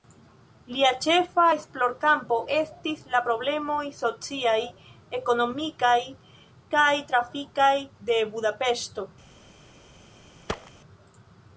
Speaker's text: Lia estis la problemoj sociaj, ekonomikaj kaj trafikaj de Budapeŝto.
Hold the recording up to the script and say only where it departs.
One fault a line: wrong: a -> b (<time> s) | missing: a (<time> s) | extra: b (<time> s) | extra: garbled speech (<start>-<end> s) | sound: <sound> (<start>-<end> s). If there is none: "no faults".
extra: ĉefa esplorkampo (1.1 s)
sound: thud (10.5-10.7 s)